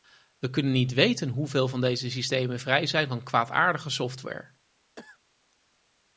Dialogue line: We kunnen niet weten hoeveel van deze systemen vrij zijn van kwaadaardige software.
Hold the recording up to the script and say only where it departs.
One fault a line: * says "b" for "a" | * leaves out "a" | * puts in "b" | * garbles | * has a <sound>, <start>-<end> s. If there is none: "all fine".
* has a cough, 5.0-5.2 s